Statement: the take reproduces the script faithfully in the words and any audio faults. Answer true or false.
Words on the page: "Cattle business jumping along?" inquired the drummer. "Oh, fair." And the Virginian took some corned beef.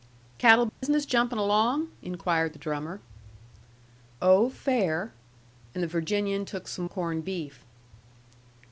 false